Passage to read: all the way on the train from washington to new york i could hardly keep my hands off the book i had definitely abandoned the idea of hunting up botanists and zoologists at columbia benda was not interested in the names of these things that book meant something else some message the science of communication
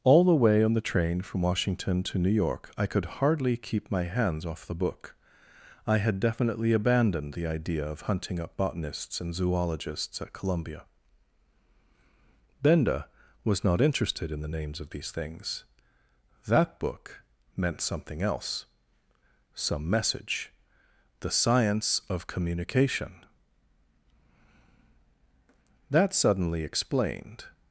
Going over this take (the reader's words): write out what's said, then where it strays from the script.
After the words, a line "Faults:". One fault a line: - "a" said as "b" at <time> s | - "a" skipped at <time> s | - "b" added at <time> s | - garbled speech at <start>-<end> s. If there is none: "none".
all the way on the train from washington to new york i could hardly keep my hands off the book i had definitely abandoned the idea of hunting up botanists and zoologists at columbia benda was not interested in the names of these things that book meant something else some message the science of communication that suddenly explained
Faults:
- "that suddenly explained" added at 25.9 s